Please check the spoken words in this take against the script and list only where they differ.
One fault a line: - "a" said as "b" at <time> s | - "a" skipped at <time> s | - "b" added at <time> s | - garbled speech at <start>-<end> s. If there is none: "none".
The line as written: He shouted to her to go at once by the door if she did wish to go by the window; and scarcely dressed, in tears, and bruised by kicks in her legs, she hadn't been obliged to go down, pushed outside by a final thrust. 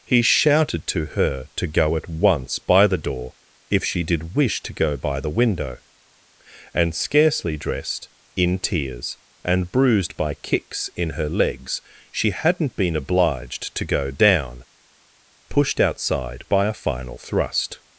none